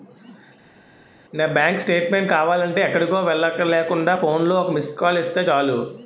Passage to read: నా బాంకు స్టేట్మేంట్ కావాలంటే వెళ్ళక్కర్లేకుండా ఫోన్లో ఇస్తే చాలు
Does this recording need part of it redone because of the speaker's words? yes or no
yes